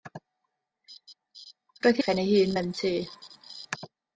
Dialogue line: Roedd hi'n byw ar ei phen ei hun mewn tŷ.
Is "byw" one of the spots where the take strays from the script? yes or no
yes